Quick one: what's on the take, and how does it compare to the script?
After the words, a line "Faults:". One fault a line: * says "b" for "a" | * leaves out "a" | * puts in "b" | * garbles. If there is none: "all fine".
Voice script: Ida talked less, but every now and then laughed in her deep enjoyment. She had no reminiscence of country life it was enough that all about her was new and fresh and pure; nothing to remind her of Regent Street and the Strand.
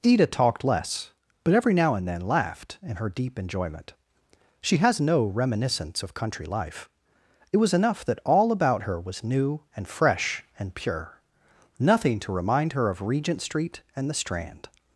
Ida talked less, but every now and then laughed in her deep enjoyment. She has no reminiscence of country life it was enough that all about her was new and fresh and pure; nothing to remind her of Regent Street and the Strand.
Faults:
* says "has" for "had"